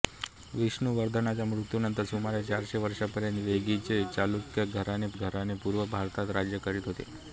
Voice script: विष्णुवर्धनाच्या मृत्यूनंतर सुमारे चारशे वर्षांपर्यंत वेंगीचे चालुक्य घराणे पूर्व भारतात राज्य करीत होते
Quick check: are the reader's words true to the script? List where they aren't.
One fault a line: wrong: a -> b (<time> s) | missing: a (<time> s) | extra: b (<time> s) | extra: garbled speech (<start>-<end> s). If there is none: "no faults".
extra: घराणे (5.1 s)